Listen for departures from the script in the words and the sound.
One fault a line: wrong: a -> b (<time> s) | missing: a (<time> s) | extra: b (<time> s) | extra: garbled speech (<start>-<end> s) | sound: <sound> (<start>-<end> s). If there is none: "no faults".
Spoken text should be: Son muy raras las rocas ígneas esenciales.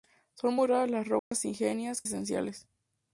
sound: dropout (1.2-1.3 s)